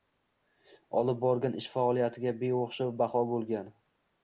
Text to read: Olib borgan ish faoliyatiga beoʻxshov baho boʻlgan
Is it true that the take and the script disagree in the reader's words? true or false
false